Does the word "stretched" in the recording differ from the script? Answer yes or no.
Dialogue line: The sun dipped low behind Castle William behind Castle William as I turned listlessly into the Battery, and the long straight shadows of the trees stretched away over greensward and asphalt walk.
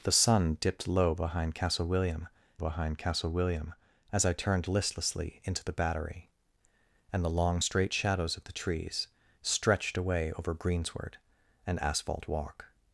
no